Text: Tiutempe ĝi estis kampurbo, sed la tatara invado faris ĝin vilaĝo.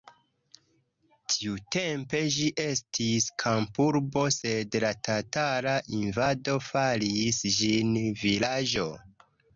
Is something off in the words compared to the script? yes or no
no